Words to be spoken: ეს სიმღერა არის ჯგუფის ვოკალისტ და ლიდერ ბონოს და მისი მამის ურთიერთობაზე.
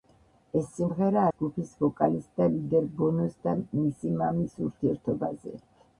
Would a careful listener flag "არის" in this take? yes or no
yes